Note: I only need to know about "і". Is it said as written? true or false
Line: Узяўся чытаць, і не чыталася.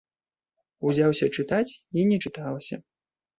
true